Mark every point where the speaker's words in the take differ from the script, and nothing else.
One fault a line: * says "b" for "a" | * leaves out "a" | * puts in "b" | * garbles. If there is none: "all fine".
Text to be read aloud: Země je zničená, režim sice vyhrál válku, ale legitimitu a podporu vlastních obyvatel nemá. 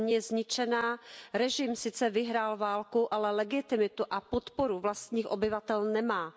all fine